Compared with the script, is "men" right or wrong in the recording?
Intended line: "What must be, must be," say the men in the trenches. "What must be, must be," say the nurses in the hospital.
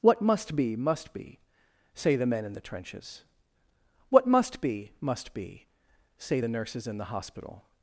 right